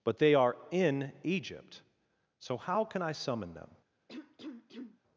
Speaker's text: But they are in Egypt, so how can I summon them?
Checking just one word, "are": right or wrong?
right